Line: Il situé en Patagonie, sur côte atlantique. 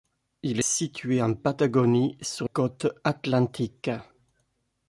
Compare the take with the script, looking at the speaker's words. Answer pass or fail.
pass